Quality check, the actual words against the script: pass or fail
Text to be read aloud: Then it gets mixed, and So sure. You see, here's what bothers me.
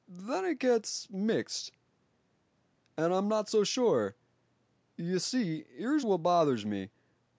fail